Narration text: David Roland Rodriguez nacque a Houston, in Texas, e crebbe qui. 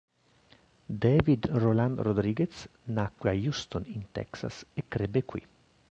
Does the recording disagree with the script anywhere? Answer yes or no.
no